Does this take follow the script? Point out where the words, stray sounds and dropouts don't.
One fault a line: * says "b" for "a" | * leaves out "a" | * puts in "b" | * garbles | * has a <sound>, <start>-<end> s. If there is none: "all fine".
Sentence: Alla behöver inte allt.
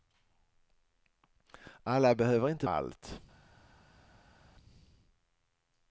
all fine